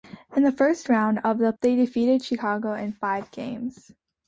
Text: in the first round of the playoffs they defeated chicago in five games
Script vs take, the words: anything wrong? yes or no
yes